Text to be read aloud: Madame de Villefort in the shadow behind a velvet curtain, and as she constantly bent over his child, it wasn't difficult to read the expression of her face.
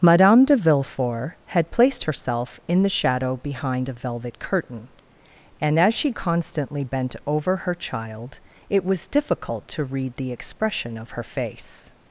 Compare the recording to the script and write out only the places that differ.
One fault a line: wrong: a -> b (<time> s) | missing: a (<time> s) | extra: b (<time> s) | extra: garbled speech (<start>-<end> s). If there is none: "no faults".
extra: had placed herself (1.4 s)
wrong: his -> her (7.6 s)
wrong: wasn't -> was (8.8 s)